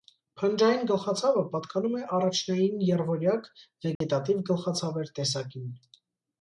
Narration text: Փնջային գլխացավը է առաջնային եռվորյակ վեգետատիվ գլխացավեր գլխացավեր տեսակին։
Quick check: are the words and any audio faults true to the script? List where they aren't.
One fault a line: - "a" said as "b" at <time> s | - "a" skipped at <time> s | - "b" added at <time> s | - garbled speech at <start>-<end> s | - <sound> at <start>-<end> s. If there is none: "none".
- "պատկանում" added at 1.5 s
- dropout at 4.0-4.0 s
- "գլխացավեր" skipped at 5.2 s